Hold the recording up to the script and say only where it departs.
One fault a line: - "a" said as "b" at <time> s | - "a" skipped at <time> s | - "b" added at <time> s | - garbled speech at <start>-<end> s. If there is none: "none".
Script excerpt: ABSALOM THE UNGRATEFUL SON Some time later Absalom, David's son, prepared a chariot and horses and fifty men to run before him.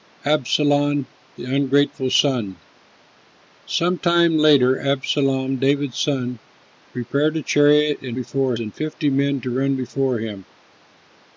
- "horses" said as "before" at 8.1 s